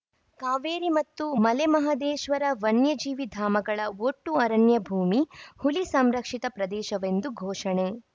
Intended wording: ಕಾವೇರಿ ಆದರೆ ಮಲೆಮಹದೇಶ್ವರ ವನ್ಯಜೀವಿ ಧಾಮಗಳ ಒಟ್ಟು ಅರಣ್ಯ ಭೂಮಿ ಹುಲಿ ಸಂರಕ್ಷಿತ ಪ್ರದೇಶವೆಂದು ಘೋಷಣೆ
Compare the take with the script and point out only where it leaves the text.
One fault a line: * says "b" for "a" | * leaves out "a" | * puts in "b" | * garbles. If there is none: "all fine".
* says "ಮತ್ತು" for "ಆದರೆ"